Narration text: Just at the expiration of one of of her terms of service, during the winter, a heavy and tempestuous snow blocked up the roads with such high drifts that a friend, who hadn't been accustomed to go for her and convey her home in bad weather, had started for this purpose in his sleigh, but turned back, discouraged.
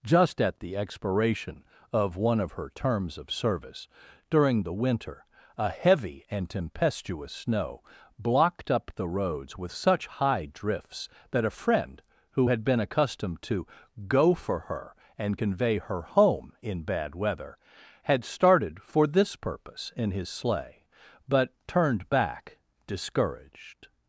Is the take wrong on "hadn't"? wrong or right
wrong